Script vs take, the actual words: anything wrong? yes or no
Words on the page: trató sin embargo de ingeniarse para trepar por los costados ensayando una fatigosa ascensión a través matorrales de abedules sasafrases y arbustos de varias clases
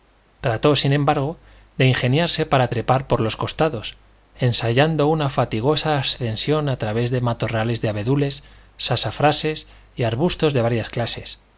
yes